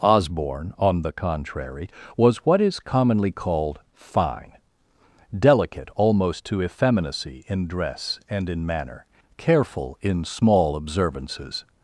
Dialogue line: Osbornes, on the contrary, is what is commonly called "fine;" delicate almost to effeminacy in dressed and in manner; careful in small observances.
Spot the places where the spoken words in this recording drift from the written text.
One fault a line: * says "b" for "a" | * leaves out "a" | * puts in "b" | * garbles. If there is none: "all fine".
* says "Osborne" for "Osbornes"
* says "was" for "is"
* says "dress" for "dressed"